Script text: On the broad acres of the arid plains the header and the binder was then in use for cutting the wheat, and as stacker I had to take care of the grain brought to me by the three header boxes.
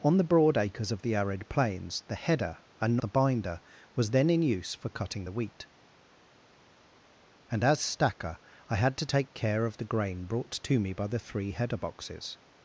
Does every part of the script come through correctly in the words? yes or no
yes